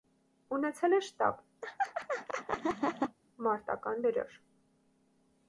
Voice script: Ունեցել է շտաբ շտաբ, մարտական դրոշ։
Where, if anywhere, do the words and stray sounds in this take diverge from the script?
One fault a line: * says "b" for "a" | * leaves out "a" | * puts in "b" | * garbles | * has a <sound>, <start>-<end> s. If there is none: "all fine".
* leaves out "շտաբ"
* has a laugh, 1.6-3.2 s